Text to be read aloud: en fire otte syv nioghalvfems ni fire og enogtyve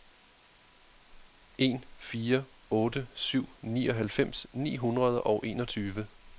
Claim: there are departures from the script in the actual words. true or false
true